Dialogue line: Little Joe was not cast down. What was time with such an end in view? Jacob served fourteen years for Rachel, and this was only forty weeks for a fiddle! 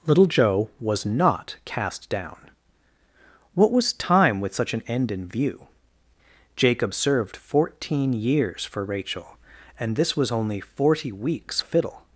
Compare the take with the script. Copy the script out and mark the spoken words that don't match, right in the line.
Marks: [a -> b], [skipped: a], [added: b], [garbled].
Little Joe was not cast down. What was time with such an end in view? Jacob served fourteen years for Rachel, and this was only forty weeks [skipped: for] a fiddle!